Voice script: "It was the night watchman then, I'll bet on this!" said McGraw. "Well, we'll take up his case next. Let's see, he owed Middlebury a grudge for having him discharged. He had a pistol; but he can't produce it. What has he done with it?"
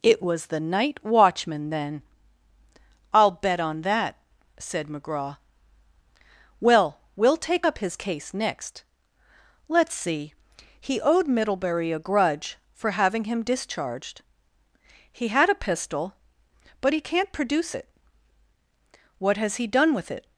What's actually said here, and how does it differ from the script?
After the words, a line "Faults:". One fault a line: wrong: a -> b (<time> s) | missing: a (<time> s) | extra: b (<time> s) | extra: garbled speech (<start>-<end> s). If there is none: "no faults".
"It was the night watchman then, I'll bet on that!" said McGraw. "Well, we'll take up his case next. Let's see, he owed Middlebury a grudge for having him discharged. He had a pistol; but he can't produce it. What has he done with it?"
Faults:
wrong: this -> that (3.8 s)